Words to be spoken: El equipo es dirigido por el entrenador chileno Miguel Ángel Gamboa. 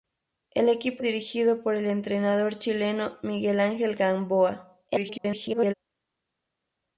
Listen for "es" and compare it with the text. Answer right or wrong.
wrong